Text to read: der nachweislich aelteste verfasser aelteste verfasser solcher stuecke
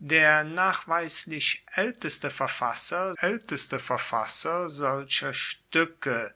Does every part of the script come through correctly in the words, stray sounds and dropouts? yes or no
yes